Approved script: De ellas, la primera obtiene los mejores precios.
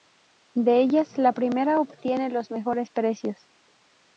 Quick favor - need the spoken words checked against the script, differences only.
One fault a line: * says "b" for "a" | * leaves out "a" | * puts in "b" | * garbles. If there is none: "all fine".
all fine